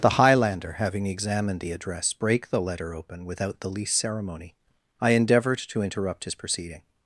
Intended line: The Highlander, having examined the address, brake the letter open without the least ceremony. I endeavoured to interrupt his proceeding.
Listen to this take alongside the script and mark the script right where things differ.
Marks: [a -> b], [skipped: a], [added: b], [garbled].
The Highlander, having examined the address, brake the letter open without the least ceremony. I endeavoured to interrupt his proceeding.